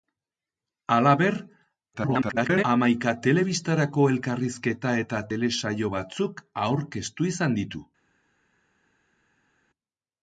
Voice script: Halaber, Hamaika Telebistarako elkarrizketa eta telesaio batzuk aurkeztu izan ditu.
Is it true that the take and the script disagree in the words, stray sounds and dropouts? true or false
true